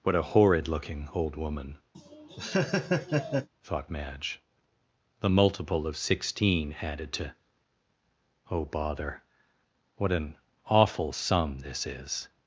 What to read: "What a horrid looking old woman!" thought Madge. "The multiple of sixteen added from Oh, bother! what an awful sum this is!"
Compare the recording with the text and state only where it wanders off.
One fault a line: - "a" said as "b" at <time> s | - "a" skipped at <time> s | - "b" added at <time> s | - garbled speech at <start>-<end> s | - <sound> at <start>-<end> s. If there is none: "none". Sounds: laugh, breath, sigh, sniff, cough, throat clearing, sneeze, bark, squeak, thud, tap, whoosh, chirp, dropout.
- laugh at 1.9-3.5 s
- "from" said as "to" at 7.1 s